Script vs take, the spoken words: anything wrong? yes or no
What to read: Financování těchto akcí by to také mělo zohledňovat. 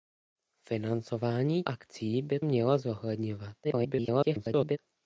yes